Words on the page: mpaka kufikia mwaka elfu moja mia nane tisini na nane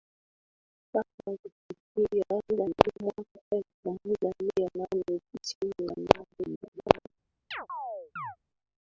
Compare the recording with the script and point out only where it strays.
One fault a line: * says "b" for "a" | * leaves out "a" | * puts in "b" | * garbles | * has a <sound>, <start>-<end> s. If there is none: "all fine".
* garbles
* garbles
* has a chirp, 7.5-8.4 s